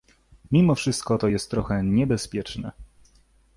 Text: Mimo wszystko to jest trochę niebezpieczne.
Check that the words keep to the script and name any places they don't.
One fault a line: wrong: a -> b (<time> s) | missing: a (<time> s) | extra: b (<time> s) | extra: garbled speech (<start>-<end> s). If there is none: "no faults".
no faults